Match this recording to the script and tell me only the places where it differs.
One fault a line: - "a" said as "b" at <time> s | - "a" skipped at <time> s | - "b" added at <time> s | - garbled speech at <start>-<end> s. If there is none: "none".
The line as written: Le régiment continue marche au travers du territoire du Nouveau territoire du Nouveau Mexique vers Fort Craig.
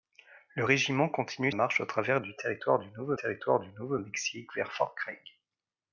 none